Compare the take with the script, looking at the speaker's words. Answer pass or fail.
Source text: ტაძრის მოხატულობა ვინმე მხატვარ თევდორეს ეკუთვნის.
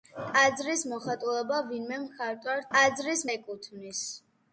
fail